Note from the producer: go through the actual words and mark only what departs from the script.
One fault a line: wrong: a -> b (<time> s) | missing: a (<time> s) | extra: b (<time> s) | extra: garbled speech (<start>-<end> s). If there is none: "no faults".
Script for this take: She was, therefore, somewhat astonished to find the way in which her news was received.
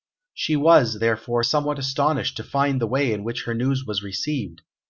no faults